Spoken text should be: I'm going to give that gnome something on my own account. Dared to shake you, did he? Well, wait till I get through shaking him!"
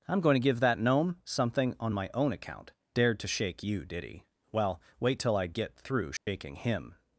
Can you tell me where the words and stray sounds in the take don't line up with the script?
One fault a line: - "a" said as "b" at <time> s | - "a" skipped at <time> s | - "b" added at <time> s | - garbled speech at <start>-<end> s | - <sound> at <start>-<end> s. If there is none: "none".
- dropout at 6.2-6.3 s